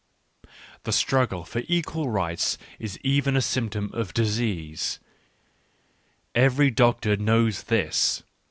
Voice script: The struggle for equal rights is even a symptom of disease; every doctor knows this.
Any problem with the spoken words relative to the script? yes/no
no